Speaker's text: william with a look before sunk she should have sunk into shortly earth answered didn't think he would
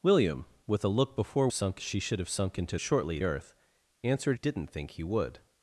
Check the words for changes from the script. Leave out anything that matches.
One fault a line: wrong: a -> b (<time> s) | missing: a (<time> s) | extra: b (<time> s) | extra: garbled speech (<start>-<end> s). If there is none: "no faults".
no faults